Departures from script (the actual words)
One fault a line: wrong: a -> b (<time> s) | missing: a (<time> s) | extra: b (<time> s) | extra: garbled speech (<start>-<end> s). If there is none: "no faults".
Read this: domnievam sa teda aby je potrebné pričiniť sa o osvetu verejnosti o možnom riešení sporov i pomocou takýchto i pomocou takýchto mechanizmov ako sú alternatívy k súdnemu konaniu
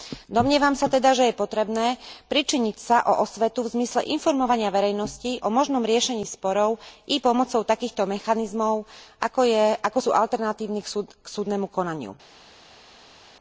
wrong: aby -> že (1.1 s)
extra: v zmysle informovania (3.6 s)
missing: i pomocou takýchto (8.1 s)